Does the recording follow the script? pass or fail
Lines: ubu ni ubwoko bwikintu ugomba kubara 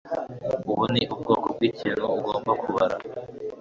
pass